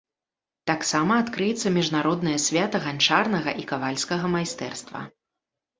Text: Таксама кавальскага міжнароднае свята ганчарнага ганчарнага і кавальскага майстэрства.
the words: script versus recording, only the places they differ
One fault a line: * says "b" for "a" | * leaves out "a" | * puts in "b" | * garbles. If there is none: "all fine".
* says "адкрыецца" for "кавальскага"
* leaves out "ганчарнага"